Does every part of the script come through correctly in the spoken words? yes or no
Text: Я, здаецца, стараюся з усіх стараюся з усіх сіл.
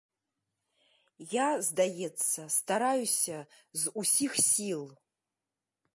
no